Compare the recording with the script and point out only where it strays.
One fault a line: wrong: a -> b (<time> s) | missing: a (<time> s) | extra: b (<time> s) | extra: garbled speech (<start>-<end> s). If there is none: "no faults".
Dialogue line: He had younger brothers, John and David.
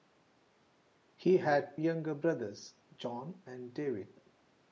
no faults